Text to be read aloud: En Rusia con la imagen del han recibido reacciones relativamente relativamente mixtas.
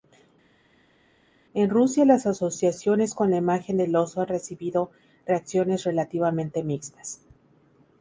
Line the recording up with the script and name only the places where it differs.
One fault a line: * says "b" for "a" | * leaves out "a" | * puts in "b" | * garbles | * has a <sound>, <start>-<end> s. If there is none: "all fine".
* puts in "las asociaciones"
* puts in "oso"
* leaves out "relativamente"